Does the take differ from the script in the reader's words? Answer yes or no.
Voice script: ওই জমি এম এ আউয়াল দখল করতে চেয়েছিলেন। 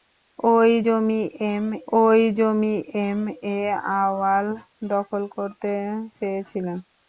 yes